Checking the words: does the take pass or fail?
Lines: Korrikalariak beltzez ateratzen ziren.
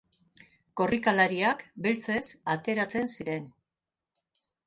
pass